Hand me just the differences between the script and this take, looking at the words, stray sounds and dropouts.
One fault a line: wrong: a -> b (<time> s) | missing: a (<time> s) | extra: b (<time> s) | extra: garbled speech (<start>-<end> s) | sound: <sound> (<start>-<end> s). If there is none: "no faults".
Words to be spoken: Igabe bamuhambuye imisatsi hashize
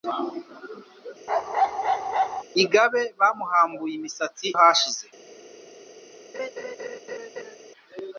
sound: bark (1.3-2.4 s)
sound: laugh (6.3-7.6 s)